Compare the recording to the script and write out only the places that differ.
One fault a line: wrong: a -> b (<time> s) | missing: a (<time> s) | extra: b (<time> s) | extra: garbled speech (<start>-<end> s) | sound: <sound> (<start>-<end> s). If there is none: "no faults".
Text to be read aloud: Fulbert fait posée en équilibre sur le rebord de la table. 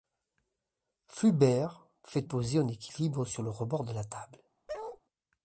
sound: bark (4.7-5.0 s)